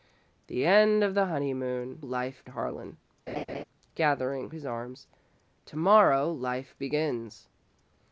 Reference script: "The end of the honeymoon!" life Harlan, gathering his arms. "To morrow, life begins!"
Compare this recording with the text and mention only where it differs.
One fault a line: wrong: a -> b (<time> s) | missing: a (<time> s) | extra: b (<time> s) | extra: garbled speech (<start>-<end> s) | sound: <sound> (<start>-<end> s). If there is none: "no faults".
sound: laugh (3.3-3.6 s)